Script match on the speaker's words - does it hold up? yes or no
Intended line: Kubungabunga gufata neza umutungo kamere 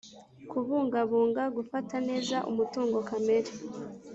yes